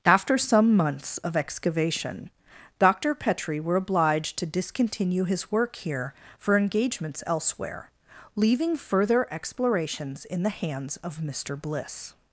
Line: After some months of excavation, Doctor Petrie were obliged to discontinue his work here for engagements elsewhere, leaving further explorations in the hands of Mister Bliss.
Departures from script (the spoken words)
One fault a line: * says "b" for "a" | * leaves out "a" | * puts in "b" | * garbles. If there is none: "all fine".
all fine